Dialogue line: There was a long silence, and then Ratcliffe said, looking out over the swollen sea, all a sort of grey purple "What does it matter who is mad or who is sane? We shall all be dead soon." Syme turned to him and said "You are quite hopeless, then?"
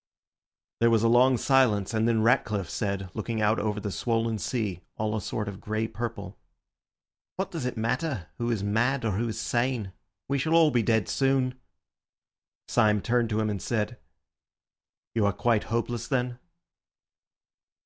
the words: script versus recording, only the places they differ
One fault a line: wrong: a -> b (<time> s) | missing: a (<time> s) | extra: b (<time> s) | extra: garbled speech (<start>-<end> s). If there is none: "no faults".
no faults